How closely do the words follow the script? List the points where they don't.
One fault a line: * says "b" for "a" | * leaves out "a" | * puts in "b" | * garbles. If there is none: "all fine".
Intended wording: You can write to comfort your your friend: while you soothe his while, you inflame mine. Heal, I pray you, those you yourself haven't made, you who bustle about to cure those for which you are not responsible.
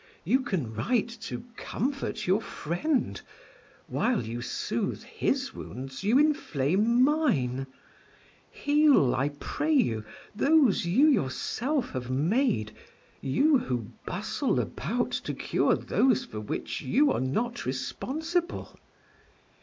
* leaves out "your"
* says "wounds" for "while"
* says "have" for "haven't"